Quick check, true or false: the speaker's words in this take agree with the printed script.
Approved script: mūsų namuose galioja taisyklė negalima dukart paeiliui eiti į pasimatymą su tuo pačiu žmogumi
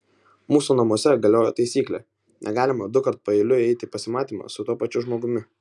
true